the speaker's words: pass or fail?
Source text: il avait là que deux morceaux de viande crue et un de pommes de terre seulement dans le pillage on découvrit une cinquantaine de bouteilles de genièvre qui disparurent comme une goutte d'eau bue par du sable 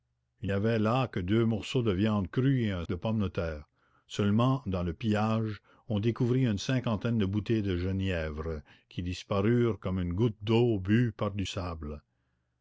pass